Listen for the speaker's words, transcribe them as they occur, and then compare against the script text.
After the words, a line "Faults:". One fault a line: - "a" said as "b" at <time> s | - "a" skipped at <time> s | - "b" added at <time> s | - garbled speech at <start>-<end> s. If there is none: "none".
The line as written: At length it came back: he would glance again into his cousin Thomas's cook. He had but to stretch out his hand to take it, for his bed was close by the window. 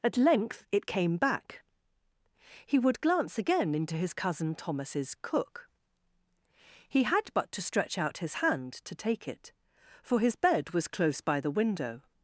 At length it came back: he would glance again into his cousin Thomas's cook. He had but to stretch out his hand to take it, for his bed was close by the window.
Faults:
none